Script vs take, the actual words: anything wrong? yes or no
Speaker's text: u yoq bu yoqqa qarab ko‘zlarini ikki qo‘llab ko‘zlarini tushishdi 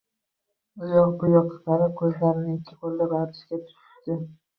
yes